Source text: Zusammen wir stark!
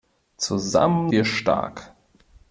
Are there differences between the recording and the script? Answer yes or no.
no